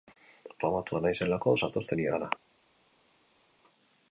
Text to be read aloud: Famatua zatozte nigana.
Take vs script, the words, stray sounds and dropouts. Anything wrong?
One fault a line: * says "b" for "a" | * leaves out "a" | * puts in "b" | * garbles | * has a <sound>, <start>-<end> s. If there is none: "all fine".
* puts in "naizelako"